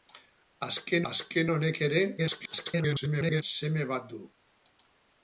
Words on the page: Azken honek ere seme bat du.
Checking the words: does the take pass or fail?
fail